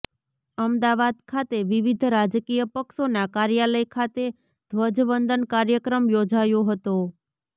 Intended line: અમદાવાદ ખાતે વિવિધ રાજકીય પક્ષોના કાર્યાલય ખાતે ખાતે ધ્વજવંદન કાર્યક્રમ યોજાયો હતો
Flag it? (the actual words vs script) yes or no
yes